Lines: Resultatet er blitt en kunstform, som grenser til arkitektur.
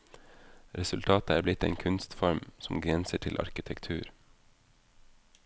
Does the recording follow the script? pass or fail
pass